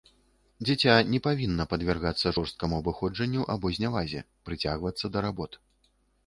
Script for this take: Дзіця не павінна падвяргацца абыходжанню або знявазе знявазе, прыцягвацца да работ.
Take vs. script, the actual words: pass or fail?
fail